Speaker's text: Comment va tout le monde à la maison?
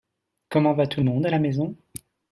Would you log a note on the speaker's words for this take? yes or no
no